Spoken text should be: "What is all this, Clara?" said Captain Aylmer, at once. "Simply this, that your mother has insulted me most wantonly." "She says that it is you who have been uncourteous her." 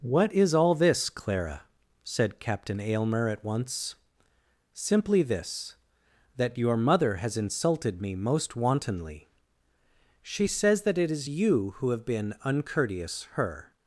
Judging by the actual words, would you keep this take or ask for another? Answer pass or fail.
pass